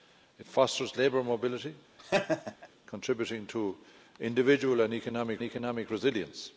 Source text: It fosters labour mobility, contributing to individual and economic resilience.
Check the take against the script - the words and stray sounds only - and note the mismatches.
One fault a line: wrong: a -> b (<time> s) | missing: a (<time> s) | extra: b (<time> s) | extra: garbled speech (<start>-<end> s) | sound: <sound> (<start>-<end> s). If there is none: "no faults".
sound: laugh (2.0-2.7 s)
extra: economic (5.4 s)